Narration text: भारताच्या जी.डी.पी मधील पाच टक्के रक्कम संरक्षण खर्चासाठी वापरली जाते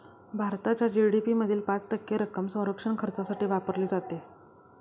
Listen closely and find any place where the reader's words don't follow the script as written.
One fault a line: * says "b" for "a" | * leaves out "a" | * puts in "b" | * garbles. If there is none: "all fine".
all fine